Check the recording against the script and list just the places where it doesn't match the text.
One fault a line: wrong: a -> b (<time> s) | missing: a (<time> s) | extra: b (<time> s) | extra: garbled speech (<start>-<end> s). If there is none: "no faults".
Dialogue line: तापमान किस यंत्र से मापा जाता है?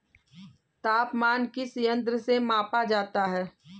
no faults